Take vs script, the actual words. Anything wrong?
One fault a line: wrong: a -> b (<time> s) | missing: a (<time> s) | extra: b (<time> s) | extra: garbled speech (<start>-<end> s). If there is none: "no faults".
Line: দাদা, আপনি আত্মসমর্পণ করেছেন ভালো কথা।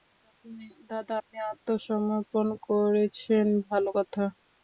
no faults